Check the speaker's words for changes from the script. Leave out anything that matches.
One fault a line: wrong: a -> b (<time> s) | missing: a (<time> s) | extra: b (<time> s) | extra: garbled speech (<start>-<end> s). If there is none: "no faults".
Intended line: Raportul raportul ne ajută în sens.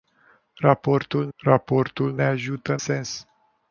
no faults